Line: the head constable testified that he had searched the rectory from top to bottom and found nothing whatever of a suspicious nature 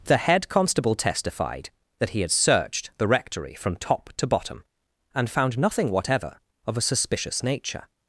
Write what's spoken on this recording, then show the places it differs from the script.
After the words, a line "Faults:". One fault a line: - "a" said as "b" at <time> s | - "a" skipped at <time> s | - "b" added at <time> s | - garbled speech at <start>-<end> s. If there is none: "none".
the head constable testified that he had searched the rectory from top to bottom and found nothing whatever of a suspicious nature
Faults:
none